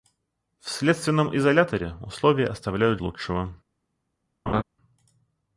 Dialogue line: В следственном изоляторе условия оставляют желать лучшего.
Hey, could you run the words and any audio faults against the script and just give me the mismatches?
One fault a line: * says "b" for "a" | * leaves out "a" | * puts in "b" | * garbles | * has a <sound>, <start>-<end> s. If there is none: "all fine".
* leaves out "желать"
* has a laugh, 4.5-4.6 s